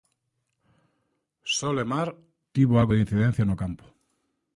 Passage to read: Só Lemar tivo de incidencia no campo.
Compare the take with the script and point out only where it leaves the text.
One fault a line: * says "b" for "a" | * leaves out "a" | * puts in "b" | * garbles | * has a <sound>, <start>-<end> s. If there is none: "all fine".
* puts in "algo"